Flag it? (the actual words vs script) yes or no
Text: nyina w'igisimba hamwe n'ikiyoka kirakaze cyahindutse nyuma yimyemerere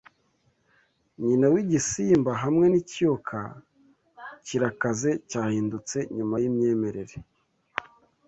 no